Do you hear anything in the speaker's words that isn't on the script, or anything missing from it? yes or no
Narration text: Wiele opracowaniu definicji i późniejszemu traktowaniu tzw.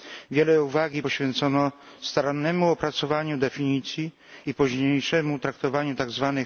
yes